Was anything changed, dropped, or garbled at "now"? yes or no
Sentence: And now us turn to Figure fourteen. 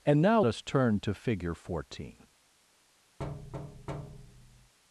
no